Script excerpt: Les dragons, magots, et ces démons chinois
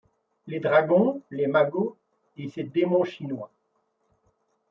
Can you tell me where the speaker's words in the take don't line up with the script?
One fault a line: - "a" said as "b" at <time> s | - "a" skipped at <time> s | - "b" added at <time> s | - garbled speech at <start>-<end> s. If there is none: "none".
- "les" added at 1.3 s